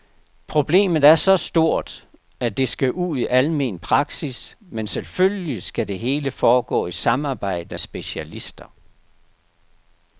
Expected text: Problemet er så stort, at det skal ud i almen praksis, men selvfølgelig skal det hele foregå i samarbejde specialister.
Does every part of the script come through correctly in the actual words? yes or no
yes